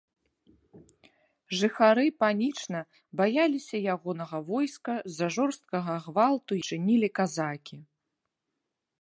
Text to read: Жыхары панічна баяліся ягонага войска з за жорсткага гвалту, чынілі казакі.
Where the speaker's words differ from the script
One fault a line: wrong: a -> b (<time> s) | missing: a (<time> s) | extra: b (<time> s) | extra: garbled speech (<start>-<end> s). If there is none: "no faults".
no faults